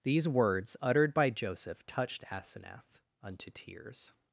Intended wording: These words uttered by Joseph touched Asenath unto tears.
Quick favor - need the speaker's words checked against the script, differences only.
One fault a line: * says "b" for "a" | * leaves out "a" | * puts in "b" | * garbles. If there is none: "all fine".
all fine